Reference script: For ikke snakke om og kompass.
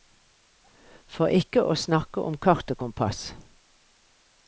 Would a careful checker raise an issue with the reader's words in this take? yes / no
yes